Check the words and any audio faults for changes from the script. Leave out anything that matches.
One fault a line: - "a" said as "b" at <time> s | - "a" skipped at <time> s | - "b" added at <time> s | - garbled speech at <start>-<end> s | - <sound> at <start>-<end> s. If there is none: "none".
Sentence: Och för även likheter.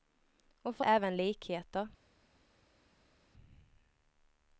none